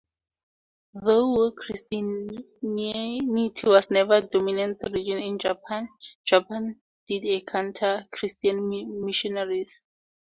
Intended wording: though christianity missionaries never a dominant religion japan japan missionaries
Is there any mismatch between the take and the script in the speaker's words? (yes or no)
yes